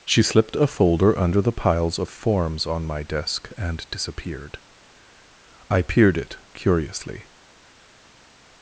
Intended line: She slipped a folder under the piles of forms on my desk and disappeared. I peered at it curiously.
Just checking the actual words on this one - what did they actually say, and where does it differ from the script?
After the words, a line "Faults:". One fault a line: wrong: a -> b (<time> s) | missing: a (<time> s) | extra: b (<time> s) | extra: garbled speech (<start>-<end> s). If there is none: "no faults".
She slipped a folder under the piles of forms on my desk and disappeared. I peered it curiously.
Faults:
missing: at (6.2 s)